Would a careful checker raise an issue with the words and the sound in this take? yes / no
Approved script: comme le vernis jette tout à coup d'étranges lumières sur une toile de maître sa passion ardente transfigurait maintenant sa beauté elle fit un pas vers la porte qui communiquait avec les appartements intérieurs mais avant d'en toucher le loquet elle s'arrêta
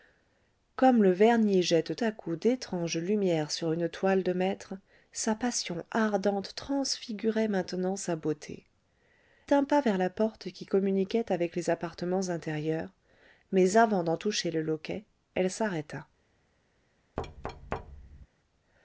yes